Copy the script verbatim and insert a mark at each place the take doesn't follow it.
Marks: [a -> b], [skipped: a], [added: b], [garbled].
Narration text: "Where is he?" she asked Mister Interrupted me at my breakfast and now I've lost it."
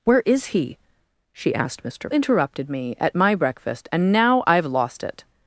"Where is he?" she asked Mister Interrupted me at my breakfast and now I've lost it."